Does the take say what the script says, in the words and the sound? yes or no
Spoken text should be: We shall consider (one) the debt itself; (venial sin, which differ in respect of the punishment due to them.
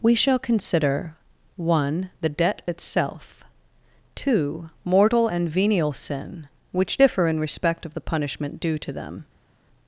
no